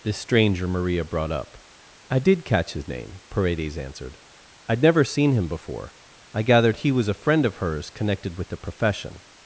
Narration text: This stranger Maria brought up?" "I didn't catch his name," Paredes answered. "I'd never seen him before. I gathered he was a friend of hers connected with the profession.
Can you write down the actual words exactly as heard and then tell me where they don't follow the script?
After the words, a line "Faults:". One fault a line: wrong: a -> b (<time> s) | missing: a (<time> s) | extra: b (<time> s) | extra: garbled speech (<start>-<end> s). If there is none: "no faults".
This stranger Maria brought up?" "I did catch his name," Paredes answered. "I'd never seen him before. I gathered he was a friend of hers connected with the profession.
Faults:
wrong: didn't -> did (2.2 s)